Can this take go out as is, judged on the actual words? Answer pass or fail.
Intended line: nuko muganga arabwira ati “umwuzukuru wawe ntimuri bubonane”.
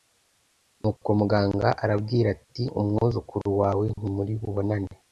pass